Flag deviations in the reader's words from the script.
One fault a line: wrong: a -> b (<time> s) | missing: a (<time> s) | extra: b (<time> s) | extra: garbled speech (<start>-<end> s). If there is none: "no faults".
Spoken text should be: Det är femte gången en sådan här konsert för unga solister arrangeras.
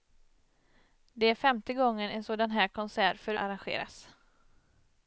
missing: unga solister (3.4 s)